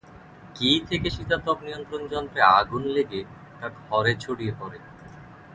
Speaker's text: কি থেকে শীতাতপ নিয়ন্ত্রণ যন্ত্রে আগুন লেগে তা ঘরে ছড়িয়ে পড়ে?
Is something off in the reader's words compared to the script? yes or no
no